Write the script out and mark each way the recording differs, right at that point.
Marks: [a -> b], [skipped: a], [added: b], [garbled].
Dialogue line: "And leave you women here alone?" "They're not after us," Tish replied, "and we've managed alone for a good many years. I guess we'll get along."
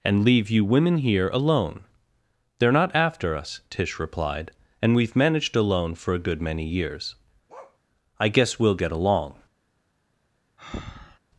"And leave you women here alone?" "They're not after us," Tish replied, "and we've managed alone for a good many years. I guess we'll get along."